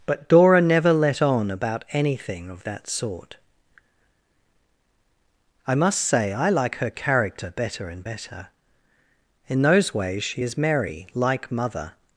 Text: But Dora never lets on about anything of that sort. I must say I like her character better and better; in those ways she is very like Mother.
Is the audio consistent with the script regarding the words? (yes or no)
no